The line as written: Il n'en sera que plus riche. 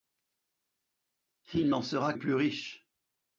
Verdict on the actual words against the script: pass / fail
fail